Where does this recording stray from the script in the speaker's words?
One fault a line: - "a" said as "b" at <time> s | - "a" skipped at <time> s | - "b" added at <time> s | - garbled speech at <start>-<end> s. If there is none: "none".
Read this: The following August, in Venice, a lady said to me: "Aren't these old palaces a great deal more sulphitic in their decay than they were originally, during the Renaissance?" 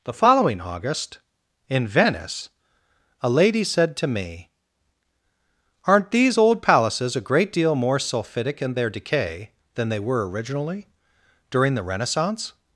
none